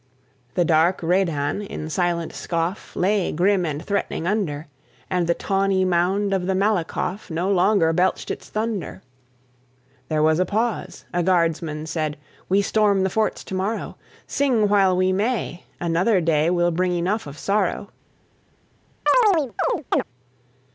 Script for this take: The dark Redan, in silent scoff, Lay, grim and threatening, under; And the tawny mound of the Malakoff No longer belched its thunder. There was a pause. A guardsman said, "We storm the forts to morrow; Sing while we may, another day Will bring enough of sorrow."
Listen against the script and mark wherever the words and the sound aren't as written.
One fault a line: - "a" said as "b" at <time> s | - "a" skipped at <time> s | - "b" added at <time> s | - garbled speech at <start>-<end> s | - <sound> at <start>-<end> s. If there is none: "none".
- chirp at 19.1-20.0 s